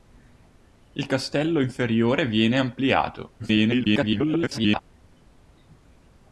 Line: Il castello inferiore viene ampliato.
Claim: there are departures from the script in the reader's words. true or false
true